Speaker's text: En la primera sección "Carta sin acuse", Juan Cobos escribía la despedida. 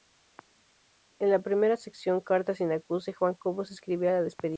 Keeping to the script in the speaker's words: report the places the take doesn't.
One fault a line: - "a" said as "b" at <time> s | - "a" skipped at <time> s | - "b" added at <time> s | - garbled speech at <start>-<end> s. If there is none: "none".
none